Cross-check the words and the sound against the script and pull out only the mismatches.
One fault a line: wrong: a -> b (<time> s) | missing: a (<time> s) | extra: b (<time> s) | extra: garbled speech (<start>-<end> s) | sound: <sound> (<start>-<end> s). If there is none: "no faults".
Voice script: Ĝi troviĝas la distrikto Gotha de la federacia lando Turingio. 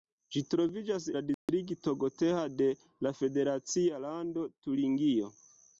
sound: dropout (1.3-1.5 s)